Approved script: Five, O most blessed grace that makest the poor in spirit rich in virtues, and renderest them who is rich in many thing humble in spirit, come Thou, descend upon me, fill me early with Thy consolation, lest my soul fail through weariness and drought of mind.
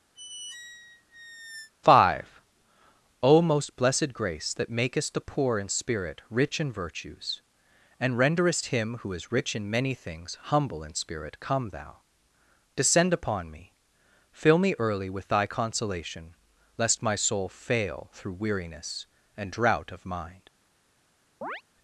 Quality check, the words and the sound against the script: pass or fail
fail